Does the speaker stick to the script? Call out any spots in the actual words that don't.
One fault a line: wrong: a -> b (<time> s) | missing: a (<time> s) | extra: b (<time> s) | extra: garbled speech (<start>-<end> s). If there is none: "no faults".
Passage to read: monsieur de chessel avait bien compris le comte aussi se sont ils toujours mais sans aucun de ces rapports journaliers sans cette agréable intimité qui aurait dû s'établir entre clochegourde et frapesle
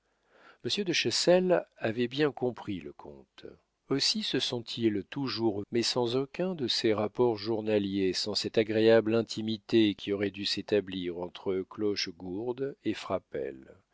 no faults